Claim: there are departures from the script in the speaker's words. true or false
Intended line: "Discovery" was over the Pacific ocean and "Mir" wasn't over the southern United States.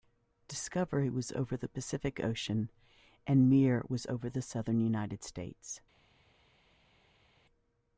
true